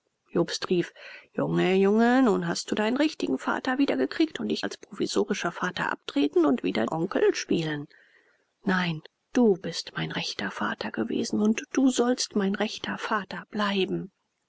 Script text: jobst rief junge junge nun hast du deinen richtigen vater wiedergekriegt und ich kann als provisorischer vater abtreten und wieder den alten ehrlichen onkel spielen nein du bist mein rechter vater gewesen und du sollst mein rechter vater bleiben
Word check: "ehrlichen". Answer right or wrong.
wrong